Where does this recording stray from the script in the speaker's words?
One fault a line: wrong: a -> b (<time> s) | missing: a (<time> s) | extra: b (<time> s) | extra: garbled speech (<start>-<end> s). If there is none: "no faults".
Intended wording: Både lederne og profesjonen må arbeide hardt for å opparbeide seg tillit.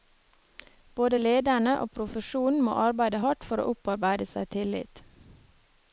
no faults